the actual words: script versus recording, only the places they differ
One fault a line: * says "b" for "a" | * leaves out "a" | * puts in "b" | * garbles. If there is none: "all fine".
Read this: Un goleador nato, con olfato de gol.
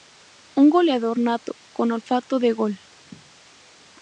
all fine